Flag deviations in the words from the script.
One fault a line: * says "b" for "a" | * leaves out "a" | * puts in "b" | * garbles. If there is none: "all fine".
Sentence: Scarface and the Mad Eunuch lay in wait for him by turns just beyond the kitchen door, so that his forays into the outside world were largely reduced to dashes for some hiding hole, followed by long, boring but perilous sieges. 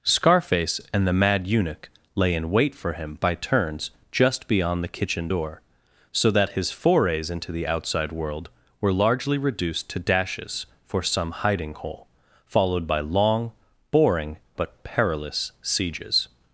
all fine